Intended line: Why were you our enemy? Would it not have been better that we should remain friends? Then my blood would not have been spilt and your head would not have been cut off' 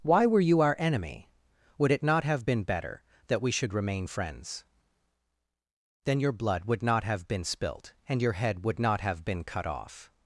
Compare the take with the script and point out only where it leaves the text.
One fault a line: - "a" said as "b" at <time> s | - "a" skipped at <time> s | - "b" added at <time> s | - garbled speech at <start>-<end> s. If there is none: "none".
- "my" said as "your" at 6.2 s